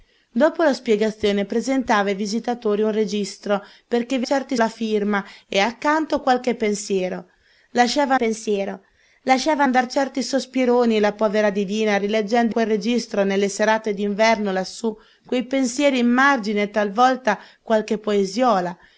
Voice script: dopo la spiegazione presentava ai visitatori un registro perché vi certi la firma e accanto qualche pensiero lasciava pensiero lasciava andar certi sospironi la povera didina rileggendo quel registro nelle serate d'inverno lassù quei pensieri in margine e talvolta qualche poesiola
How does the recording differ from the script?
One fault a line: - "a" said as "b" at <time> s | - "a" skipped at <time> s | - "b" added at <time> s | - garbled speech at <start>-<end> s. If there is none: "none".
none